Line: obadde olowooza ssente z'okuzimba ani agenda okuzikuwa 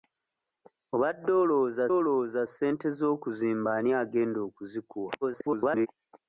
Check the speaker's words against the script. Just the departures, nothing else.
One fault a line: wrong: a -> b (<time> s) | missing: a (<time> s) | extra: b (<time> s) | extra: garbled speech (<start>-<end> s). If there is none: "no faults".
extra: olowooza (2.0 s)
extra: garbled speech (5.2-5.9 s)